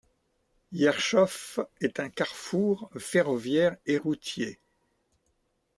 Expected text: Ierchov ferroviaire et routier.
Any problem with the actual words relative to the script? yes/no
yes